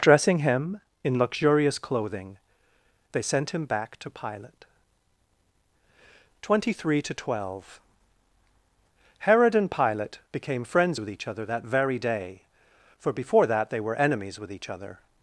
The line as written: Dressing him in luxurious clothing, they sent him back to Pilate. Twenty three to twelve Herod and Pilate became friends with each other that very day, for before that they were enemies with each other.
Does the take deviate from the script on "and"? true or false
false